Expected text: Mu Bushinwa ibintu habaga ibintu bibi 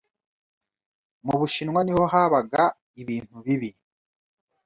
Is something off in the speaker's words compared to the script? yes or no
yes